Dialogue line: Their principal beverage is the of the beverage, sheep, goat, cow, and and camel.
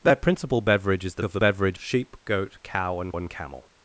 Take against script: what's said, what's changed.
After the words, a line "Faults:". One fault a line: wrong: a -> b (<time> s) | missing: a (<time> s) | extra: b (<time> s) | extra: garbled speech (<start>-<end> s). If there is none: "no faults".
Their principal beverage is the of the beverage, sheep, goat, cow, and and camel.
Faults:
no faults